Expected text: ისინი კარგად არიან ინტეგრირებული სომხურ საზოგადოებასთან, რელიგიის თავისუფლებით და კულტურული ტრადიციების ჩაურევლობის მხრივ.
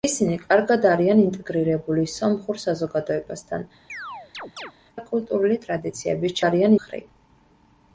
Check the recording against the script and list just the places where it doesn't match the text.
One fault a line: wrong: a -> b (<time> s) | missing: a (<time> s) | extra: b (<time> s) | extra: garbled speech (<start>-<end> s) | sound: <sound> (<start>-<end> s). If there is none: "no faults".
missing: რელიგიის თავისუფლებით (3.7 s)
sound: chirp (3.9-4.7 s)
wrong: ჩაურევლობის -> არიან (6.4 s)